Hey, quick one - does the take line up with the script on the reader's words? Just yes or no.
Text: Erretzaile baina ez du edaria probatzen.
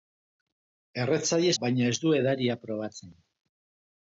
yes